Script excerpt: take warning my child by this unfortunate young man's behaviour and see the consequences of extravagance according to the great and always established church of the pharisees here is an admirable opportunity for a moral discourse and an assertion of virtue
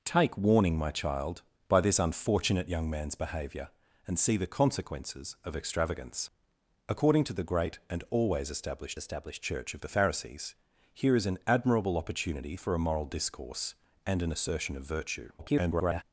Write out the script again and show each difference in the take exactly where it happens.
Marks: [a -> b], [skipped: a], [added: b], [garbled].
take warning my child by this unfortunate young man's behaviour and see the consequences of extravagance according to the great and always established [added: established] church of the pharisees here is an admirable opportunity for a moral discourse and an assertion of virtue [garbled]